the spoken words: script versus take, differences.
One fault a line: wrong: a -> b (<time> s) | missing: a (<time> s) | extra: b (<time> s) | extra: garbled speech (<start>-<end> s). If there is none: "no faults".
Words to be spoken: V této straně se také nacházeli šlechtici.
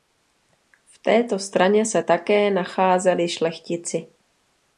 no faults